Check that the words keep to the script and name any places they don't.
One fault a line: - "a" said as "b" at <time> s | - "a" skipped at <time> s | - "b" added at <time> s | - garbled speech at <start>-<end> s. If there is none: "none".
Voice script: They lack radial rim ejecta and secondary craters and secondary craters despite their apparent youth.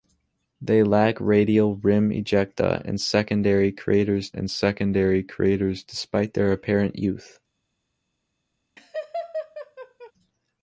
none